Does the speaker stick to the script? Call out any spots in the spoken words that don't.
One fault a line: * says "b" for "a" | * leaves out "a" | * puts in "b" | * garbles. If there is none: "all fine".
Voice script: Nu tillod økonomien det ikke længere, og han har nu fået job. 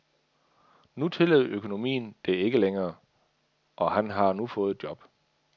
all fine